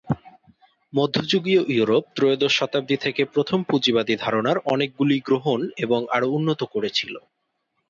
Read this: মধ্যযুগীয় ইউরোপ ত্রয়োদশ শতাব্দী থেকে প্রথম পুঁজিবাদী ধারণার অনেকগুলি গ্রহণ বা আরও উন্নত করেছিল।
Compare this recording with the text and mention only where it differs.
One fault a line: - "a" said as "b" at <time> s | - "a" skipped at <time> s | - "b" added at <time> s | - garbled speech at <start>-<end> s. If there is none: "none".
- "বা" said as "এবং" at 5.8 s